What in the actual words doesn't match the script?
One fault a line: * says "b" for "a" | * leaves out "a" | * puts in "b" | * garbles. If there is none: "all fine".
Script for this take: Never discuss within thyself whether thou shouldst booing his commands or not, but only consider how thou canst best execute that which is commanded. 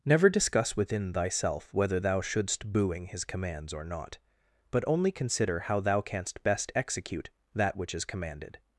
all fine